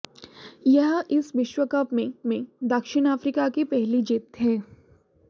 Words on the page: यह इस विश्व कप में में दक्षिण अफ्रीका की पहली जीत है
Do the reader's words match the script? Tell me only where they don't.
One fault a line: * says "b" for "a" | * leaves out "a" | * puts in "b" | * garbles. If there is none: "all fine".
all fine